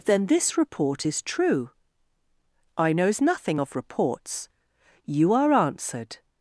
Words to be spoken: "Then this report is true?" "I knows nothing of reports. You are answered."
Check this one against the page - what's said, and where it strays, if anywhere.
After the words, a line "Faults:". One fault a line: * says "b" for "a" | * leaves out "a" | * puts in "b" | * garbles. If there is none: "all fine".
"Then this report is true?" "I knows nothing of reports. You are answered."
Faults:
all fine